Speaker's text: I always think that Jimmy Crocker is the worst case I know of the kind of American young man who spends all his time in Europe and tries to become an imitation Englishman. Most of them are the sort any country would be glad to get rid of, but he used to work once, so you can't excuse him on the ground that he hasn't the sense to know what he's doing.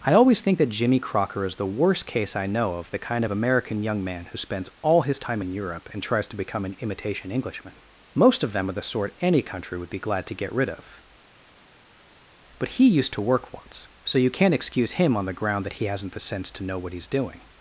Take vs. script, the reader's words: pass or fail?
pass